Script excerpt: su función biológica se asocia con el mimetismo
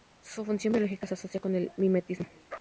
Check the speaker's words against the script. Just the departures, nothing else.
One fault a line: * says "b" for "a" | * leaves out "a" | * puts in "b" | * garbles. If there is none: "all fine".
all fine